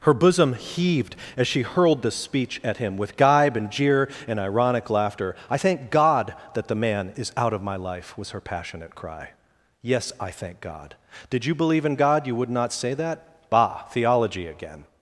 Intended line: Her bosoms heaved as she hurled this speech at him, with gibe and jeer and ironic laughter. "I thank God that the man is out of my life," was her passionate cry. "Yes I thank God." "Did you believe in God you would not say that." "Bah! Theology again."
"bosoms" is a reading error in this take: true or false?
true